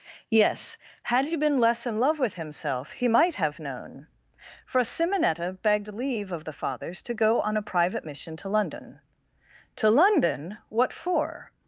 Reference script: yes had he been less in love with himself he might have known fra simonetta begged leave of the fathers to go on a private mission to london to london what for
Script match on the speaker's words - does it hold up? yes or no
no